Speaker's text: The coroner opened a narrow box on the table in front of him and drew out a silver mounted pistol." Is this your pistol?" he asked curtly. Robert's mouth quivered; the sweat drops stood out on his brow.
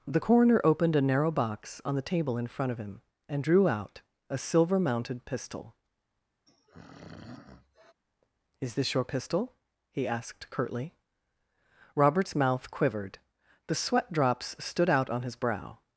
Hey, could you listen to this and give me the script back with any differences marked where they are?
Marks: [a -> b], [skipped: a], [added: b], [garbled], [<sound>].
The coroner opened a narrow box on the table in front of him and drew out a silver mounted pistol." [throat clearing] Is this your pistol?" he asked curtly. Robert's mouth quivered; the sweat drops stood out on his brow.